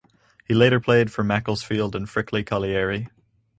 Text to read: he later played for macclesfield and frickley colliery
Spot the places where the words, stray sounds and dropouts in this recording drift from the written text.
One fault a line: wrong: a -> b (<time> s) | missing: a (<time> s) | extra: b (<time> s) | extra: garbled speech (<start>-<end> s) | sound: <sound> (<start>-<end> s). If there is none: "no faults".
no faults